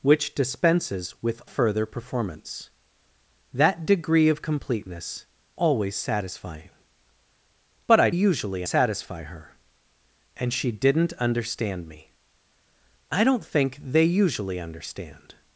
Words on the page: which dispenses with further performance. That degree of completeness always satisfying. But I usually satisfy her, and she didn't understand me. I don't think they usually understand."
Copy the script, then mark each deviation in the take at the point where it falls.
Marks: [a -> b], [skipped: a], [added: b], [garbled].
which dispenses with further performance. That degree of completeness always satisfying. But I usually satisfy her, and she didn't understand me. I don't think they usually understand."